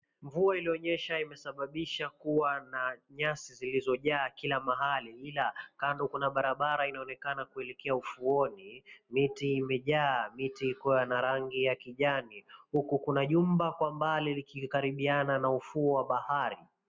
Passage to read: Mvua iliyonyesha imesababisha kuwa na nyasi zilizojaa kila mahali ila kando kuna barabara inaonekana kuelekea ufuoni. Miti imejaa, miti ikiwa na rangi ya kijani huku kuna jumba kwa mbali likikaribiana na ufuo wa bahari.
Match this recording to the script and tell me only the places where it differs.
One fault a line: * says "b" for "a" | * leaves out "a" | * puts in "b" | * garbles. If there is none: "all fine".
all fine